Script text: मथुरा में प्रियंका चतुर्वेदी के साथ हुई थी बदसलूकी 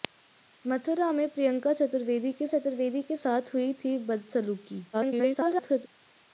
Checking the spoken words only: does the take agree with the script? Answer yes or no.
no